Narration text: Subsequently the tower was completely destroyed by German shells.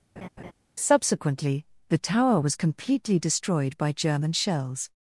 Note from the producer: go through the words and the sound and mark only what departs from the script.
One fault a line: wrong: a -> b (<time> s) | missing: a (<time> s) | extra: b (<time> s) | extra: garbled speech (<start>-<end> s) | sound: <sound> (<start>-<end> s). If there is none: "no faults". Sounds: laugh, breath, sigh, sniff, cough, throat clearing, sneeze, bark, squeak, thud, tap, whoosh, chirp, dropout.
sound: laugh (0.2-0.5 s)